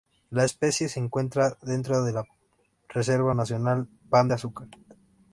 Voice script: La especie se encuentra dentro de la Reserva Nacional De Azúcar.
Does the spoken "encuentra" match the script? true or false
true